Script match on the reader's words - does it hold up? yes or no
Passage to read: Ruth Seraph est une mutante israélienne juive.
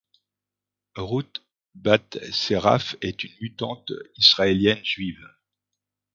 no